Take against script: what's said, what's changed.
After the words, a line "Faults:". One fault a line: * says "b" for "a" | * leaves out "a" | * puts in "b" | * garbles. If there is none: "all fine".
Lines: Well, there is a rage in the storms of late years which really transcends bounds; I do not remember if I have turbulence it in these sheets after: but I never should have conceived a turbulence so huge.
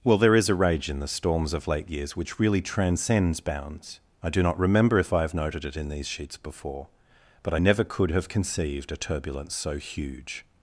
Well, there is a rage in the storms of late years which really transcends bounds; I do not remember if I have noted it in these sheets before: but I never could have conceived a turbulence so huge.
Faults:
* says "noted" for "turbulence"
* says "before" for "after"
* says "could" for "should"